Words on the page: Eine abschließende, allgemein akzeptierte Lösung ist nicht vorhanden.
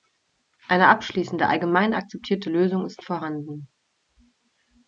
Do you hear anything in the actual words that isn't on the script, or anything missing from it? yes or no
yes